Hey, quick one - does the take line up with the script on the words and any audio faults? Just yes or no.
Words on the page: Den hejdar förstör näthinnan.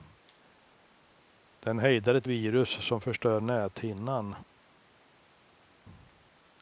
no